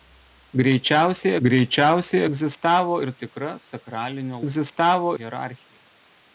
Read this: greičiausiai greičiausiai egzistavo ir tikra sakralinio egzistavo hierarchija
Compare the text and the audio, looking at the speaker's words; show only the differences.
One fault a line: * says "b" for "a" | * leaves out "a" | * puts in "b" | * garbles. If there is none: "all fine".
all fine